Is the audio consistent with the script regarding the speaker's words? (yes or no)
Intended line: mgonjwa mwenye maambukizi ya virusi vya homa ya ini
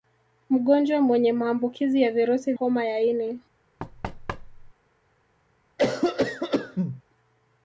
no